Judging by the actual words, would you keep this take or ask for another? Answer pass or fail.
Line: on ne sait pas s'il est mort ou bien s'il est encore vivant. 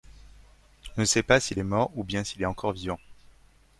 pass